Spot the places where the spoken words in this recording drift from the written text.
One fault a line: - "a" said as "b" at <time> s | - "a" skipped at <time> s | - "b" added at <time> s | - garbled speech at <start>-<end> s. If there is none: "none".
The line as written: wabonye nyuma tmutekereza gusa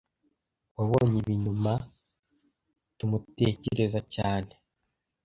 - "ibi" added at 1.2 s
- "gusa" said as "cyane" at 4.1 s